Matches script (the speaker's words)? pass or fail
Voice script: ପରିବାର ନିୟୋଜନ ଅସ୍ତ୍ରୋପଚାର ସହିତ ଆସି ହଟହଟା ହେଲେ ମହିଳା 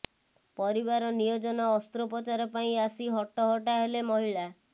fail